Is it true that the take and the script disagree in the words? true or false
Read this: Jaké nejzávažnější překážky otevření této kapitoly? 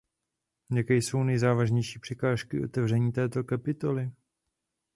true